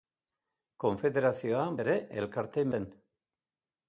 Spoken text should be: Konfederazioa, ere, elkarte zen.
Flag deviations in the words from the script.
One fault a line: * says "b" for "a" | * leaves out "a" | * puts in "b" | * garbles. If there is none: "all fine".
all fine